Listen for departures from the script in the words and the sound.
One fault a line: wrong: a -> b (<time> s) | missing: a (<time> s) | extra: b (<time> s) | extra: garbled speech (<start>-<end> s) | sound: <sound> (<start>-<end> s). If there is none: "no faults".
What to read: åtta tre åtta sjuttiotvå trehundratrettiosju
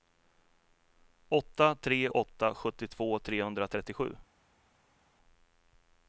no faults